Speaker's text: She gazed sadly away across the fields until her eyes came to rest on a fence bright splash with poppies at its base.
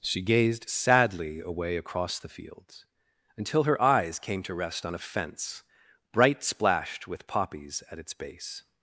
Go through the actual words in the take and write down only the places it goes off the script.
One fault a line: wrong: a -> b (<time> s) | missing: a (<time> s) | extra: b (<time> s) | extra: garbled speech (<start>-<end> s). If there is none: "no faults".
wrong: splash -> splashed (6.4 s)